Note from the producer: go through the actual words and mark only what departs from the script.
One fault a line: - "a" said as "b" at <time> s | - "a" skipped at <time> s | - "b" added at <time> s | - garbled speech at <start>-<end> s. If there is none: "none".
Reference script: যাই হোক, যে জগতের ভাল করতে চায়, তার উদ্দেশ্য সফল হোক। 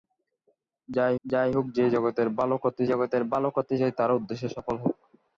- "যাই" added at 1.3 s
- "জগতের ভাল করতে" added at 2.9 s